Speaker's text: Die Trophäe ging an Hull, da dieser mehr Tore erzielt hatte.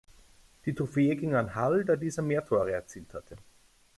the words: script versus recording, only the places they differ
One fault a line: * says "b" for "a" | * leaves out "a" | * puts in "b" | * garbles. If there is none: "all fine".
all fine